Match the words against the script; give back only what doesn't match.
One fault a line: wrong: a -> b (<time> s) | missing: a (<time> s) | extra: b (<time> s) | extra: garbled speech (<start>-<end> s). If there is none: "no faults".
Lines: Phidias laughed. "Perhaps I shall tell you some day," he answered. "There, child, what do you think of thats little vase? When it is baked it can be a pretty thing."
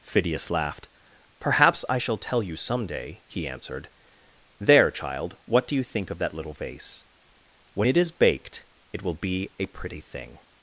wrong: thats -> that (6.2 s)
wrong: can -> will (9.0 s)